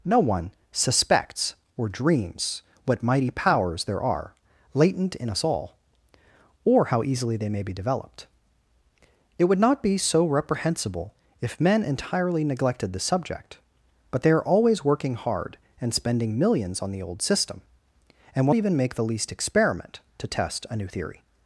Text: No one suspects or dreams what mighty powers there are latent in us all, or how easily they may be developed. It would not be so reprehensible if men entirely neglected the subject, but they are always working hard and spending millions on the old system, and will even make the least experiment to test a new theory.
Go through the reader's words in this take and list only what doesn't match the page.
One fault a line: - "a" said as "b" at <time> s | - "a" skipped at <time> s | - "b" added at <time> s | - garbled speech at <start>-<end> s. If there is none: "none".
none